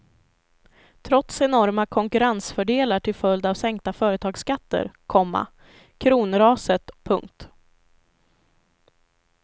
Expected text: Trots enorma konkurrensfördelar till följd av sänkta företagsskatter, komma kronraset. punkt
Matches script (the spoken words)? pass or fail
pass